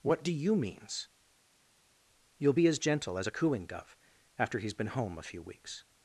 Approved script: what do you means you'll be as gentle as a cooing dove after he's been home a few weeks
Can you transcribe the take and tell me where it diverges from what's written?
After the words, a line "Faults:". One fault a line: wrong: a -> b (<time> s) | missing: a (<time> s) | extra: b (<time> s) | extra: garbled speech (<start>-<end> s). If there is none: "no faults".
what do you means you'll be as gentle as a cooing dove after he's been home a few weeks
Faults:
no faults